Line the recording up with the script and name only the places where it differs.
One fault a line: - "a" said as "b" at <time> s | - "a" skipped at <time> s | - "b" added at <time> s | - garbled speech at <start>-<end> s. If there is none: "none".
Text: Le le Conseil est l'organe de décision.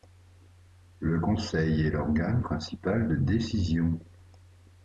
- "le" skipped at 1.2 s
- "principal" added at 2.4 s